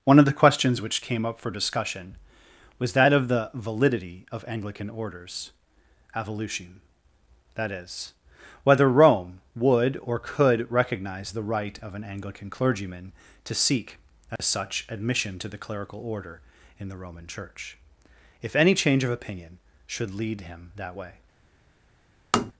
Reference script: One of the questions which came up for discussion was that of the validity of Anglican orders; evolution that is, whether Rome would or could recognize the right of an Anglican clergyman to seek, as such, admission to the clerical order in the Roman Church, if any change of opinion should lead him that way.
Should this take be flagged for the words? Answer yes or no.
no